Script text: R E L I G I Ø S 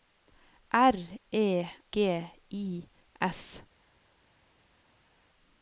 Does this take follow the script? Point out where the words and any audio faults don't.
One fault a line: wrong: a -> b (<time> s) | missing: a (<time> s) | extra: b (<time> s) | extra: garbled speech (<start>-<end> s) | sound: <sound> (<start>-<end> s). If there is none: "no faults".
missing: L I (1.6 s)
missing: Ø (2.9 s)